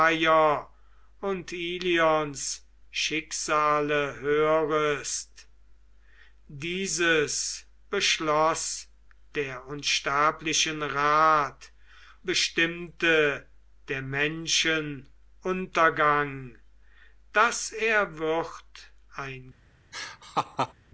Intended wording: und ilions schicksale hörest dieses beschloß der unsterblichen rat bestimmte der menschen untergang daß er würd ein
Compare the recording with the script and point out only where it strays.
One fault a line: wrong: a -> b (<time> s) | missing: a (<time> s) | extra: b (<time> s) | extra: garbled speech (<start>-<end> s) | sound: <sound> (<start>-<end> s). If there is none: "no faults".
sound: laugh (19.9-20.7 s)